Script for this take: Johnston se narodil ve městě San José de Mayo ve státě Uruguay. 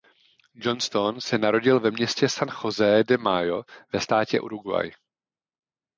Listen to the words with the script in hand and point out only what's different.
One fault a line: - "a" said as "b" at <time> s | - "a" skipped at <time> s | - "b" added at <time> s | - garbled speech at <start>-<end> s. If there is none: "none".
none